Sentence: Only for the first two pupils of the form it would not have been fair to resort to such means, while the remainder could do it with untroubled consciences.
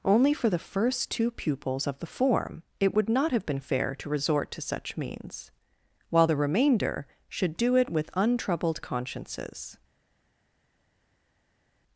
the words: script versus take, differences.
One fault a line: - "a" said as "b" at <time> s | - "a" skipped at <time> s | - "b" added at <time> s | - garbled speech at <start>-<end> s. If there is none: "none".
- "could" said as "should" at 7.3 s